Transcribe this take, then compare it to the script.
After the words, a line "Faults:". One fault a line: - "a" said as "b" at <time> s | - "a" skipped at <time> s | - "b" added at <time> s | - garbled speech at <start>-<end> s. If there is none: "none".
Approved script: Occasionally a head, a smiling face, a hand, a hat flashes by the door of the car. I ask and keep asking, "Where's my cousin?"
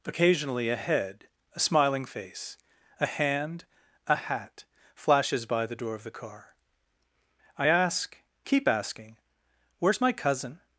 Occasionally a head, a smiling face, a hand, a hat flashes by the door of the car. I ask keep asking, "Where's my cousin?"
Faults:
- "and" skipped at 8.2 s